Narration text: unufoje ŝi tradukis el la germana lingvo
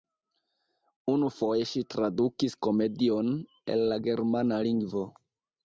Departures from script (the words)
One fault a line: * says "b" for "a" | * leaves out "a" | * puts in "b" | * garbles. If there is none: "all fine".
* puts in "komedion"